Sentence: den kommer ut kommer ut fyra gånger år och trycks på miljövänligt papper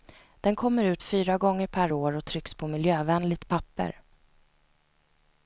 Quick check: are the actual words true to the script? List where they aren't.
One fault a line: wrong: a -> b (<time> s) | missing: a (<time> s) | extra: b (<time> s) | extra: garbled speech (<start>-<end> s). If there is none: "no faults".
missing: kommer ut (1.0 s)
extra: per (1.7 s)